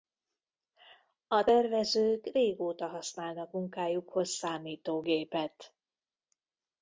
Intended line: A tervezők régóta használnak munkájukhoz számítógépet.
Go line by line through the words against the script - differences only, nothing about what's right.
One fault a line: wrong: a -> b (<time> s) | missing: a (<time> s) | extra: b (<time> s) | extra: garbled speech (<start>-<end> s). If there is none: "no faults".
no faults